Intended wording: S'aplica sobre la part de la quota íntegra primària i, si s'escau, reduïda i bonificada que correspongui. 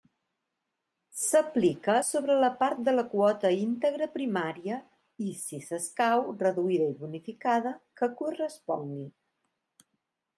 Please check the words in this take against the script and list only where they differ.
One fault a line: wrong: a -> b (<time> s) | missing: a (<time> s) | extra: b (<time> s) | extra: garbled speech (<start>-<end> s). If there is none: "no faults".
no faults